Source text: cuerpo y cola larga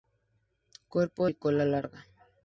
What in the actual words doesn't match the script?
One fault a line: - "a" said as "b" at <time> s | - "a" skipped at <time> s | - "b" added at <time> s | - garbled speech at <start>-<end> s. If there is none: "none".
none